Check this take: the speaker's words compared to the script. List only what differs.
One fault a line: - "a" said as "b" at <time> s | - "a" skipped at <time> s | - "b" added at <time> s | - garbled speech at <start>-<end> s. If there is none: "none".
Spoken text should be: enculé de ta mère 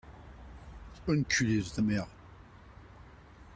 none